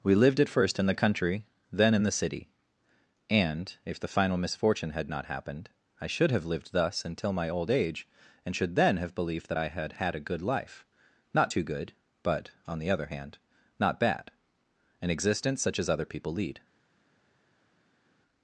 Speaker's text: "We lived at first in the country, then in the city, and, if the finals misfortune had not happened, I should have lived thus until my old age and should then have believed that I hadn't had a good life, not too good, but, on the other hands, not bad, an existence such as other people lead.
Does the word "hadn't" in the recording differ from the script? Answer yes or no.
yes